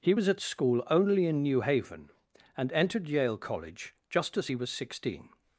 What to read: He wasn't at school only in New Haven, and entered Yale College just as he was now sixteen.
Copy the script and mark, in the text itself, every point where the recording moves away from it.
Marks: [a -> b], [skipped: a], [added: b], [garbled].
He [wasn't -> was] at school only in New Haven, and entered Yale College just as he was [skipped: now] sixteen.